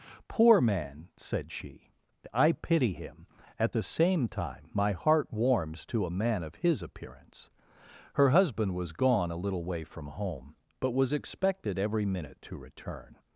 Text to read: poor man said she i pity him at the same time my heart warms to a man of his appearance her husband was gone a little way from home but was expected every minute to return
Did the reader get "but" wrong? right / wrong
right